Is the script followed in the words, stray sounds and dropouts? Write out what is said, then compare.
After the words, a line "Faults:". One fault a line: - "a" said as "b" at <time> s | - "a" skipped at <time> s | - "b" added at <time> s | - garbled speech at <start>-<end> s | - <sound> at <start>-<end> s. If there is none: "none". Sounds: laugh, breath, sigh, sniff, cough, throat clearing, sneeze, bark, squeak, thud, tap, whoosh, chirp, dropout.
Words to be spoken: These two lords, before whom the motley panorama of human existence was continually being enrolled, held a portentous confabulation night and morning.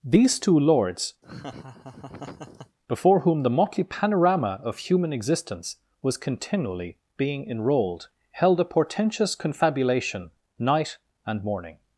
These two lords, before whom the motley panorama of human existence was continually being enrolled, held a portentous confabulation night and morning.
Faults:
- laugh at 1.2-2.8 s